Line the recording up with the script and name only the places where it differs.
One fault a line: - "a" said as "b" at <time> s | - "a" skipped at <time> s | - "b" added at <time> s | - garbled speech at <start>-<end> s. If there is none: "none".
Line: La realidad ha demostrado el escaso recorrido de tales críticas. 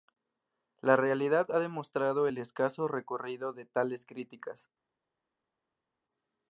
none